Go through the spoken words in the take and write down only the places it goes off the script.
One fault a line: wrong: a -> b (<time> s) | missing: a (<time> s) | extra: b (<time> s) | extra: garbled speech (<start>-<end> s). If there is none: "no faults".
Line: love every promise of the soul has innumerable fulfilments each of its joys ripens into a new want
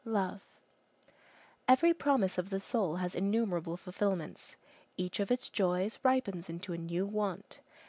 no faults